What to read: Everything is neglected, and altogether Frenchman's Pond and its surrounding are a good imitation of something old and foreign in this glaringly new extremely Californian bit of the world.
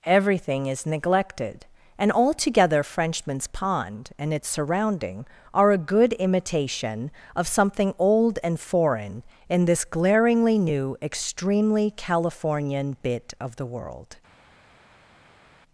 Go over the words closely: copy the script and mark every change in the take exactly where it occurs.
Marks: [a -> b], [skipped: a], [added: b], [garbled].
Everything is neglected, and altogether Frenchman's Pond and its surrounding are a good imitation of something old and foreign in this glaringly new extremely Californian bit of the world.